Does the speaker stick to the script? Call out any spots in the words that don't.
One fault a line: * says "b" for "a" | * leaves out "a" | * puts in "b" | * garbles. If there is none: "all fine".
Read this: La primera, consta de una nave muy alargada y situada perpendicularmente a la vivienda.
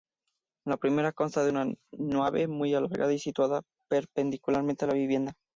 all fine